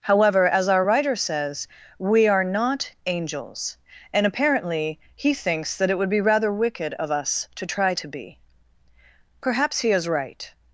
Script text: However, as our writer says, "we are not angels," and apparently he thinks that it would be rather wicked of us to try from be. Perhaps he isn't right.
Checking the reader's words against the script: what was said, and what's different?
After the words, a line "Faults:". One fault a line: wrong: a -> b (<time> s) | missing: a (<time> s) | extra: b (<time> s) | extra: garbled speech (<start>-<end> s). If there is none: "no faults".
However, as our writer says, "we are not angels," and apparently he thinks that it would be rather wicked of us to try to be. Perhaps he is right.
Faults:
wrong: from -> to (8.0 s)
wrong: isn't -> is (9.9 s)